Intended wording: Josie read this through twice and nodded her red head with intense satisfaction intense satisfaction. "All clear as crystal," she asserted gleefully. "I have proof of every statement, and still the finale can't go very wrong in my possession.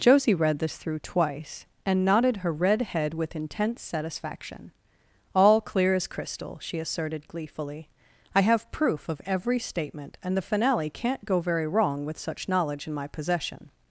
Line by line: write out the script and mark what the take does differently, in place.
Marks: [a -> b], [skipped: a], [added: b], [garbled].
Josie read this through twice and nodded her red head with intense satisfaction [skipped: intense satisfaction.] "All clear as crystal," she asserted gleefully. "I have proof of every statement, and [skipped: still] the finale can't go very wrong [added: with such knowledge] in my possession.